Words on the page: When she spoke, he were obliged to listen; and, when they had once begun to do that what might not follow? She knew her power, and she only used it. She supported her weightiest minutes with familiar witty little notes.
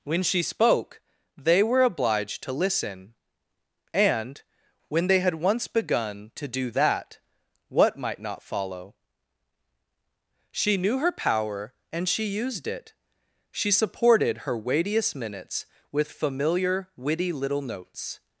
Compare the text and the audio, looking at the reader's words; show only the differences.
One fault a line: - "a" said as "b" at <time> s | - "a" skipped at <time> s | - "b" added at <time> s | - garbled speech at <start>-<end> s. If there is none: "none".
- "he" said as "they" at 1.4 s
- "only" skipped at 12.2 s